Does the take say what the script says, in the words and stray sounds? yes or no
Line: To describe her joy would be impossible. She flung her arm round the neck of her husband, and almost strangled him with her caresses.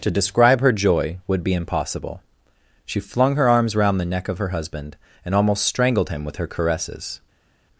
no